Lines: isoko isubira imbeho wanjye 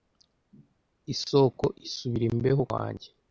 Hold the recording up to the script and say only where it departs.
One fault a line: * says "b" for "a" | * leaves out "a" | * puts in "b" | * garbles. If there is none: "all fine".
all fine